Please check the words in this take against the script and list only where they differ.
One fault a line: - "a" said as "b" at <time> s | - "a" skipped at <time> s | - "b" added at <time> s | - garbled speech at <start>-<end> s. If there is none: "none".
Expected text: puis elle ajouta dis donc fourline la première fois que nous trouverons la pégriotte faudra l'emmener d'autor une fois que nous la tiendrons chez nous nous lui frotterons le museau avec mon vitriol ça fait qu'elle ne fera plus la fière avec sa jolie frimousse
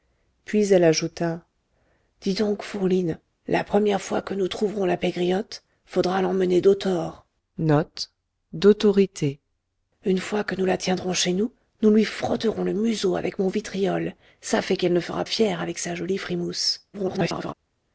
- "plus la" skipped at 15.2 s
- garbled speech at 16.9-17.5 s